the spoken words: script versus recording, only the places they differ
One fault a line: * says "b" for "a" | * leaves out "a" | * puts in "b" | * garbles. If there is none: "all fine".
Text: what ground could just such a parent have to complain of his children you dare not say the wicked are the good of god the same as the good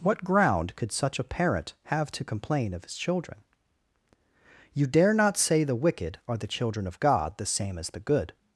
* leaves out "just"
* says "children" for "good"